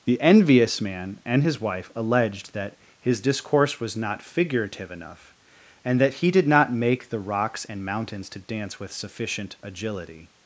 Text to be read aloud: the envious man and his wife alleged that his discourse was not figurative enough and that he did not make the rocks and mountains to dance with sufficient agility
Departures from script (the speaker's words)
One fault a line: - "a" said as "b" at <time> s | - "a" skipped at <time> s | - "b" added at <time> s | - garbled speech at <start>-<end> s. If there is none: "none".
none